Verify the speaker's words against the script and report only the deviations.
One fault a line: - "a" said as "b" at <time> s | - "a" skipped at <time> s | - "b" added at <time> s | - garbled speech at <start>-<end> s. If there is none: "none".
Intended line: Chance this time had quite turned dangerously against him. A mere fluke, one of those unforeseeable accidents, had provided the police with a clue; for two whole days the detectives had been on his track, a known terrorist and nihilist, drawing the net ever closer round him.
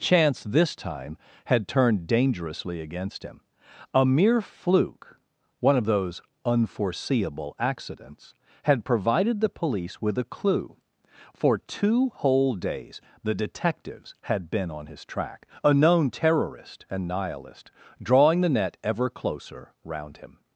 - "quite" skipped at 1.7 s